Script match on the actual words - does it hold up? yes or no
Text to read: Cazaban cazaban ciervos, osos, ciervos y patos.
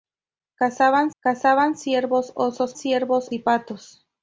yes